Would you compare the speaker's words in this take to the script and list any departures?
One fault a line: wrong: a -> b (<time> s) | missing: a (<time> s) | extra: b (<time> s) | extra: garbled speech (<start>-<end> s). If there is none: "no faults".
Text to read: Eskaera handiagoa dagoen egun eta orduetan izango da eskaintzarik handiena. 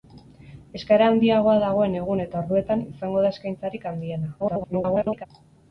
extra: garbled speech (4.4-5.3 s)